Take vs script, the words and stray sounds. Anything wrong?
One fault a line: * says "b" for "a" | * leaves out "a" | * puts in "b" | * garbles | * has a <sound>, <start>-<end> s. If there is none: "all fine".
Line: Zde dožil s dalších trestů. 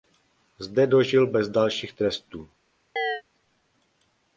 * says "bez" for "s"
* has a chirp, 3.0-3.2 s